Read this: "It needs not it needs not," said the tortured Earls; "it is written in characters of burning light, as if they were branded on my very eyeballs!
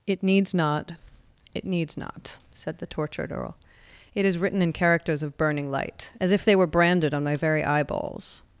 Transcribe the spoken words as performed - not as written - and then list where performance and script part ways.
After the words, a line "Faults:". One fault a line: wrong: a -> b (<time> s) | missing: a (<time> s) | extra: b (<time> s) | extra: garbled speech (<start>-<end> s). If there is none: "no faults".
"It needs not it needs not," said the tortured Earl; "it is written in characters of burning light, as if they were branded on my very eyeballs!
Faults:
wrong: Earls -> Earl (3.3 s)